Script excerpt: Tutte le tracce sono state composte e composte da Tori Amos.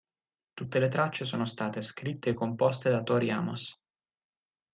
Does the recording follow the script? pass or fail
fail